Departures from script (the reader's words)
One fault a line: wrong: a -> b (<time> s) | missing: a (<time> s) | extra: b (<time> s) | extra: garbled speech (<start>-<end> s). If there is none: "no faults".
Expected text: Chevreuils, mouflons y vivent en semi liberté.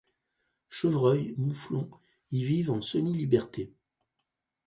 no faults